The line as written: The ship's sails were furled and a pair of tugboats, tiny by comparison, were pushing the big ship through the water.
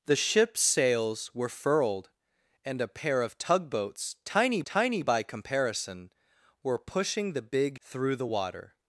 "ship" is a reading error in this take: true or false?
true